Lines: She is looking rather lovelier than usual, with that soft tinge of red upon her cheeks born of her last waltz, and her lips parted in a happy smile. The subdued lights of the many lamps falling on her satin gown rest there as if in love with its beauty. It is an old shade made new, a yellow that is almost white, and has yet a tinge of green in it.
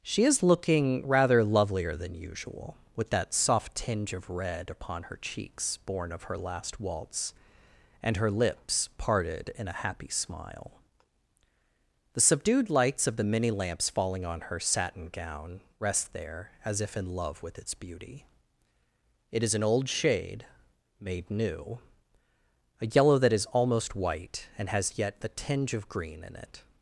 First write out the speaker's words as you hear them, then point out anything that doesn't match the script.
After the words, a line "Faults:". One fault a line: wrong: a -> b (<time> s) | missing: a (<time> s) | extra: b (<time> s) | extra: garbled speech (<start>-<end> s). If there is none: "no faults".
She is looking rather lovelier than usual, with that soft tinge of red upon her cheeks born of her last waltz, and her lips parted in a happy smile. The subdued lights of the many lamps falling on her satin gown rest there as if in love with its beauty. It is an old shade made new, a yellow that is almost white, and has yet the tinge of green in it.
Faults:
wrong: a -> the (25.2 s)